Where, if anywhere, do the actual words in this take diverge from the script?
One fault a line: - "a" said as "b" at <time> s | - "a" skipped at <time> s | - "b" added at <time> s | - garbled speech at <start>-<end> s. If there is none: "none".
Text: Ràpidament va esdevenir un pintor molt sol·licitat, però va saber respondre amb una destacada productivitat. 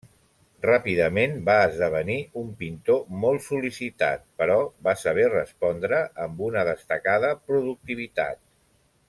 none